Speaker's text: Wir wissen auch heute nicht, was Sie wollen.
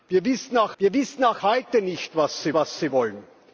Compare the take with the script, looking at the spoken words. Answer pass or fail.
fail